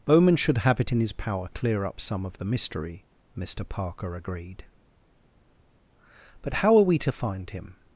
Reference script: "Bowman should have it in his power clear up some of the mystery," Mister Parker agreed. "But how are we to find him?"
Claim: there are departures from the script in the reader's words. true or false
false